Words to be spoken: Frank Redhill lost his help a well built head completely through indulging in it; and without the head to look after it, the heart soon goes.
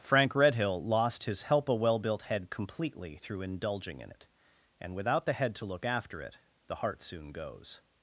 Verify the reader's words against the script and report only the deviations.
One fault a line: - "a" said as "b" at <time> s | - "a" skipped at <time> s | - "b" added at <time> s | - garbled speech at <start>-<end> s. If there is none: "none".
none